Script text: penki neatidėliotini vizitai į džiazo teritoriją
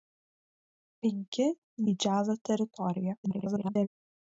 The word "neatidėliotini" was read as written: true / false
false